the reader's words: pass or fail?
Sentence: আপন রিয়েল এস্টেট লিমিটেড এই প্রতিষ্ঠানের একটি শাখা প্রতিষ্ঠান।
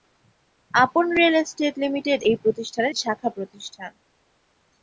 fail